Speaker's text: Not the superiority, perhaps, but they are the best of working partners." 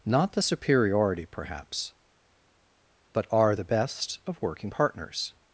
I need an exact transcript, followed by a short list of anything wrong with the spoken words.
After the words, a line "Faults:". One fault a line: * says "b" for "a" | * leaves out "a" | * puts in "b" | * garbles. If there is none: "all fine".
Not the superiority, perhaps, but are the best of working partners."
Faults:
* leaves out "they"